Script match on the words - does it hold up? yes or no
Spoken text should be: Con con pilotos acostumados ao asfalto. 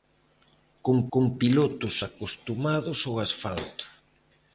yes